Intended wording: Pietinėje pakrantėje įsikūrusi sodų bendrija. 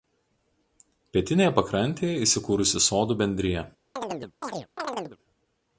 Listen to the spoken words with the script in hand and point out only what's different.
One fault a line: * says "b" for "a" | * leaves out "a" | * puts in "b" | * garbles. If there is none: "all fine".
all fine